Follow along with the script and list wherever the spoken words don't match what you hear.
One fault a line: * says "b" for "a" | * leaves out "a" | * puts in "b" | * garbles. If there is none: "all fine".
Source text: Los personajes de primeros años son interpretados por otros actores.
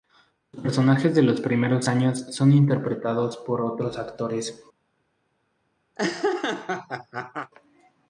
* puts in "los"